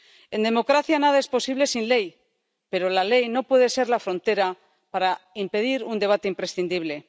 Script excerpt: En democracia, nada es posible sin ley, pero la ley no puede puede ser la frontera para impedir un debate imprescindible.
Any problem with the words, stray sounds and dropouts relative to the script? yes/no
yes